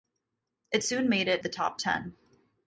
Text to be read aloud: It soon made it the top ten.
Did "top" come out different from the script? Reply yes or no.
no